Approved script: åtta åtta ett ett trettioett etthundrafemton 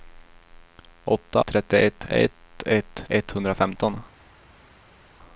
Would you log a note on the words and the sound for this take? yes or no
yes